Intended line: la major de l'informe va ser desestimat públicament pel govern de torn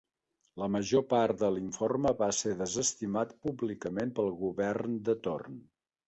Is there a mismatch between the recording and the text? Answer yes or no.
yes